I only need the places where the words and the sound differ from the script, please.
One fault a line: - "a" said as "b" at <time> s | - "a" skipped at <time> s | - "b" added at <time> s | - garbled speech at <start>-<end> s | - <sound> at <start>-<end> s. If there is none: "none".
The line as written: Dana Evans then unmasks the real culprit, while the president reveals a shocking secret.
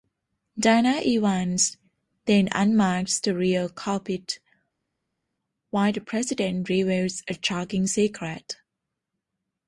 none